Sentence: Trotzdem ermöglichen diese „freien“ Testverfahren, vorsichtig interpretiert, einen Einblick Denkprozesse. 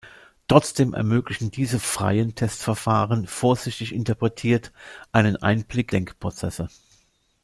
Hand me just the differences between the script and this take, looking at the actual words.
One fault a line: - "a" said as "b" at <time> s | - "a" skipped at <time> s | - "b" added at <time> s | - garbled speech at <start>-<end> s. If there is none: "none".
none